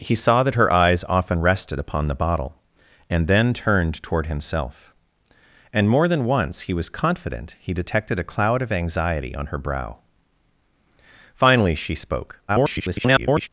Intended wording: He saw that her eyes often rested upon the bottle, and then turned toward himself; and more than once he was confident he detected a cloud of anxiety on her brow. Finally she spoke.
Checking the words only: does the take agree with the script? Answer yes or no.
no